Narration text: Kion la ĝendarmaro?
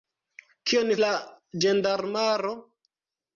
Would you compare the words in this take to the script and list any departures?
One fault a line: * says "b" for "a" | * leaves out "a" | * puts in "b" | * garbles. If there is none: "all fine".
all fine